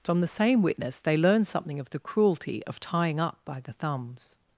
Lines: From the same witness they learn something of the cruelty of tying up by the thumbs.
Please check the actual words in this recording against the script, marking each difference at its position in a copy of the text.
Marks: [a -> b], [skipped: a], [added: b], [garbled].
From the same witness they learn something of the cruelty of tying up by the thumbs.